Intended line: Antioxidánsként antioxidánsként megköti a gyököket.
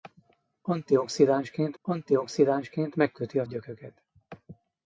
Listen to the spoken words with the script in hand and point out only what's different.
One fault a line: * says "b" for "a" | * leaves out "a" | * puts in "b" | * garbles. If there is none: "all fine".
all fine